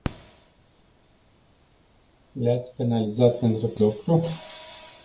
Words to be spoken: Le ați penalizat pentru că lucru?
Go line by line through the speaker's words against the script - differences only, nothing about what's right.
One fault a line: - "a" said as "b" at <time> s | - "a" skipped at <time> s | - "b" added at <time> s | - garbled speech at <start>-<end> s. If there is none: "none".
none